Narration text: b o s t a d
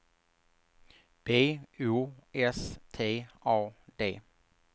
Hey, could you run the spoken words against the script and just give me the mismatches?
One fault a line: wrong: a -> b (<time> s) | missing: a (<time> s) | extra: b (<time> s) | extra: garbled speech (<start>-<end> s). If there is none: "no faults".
no faults